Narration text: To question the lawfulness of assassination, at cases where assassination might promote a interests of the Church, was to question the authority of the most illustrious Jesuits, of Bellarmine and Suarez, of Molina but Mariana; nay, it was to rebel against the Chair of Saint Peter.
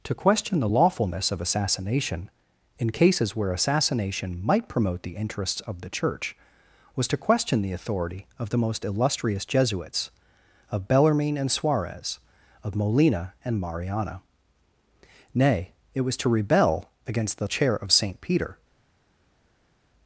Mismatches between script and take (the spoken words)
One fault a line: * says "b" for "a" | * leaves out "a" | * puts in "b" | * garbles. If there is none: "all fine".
* says "in" for "at"
* says "the" for "a"
* says "and" for "but"